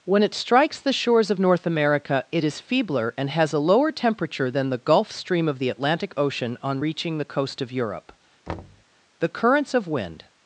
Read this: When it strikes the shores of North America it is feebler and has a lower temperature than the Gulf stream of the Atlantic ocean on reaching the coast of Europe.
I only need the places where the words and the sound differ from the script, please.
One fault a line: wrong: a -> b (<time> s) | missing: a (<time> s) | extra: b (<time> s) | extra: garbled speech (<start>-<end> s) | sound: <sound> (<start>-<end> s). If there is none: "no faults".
sound: thud (8.5-8.8 s)
extra: The currents of wind (9.2 s)